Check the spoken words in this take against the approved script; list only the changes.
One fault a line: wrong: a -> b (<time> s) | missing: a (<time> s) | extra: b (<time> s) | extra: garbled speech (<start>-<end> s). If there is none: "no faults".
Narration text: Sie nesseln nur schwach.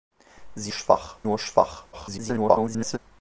wrong: nesseln -> schwach (0.7 s)
extra: garbled speech (1.9-3.0 s)